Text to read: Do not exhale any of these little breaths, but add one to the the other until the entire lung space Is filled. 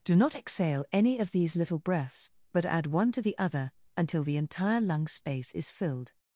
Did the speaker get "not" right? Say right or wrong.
right